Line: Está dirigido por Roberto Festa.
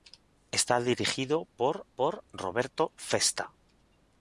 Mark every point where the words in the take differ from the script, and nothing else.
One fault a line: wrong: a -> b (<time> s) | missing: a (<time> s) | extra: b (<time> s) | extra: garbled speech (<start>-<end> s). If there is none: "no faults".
extra: por (1.9 s)